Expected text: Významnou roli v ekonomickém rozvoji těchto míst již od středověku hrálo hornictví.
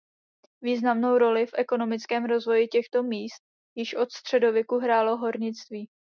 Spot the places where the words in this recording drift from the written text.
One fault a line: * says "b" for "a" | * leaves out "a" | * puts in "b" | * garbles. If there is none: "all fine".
all fine